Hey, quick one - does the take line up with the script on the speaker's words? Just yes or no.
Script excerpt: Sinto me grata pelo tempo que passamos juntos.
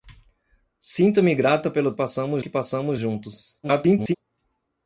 no